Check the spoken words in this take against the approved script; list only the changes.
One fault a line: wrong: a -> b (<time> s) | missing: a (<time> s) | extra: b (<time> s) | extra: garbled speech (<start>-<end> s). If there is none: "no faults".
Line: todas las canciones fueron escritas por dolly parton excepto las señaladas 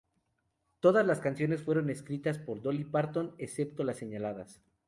no faults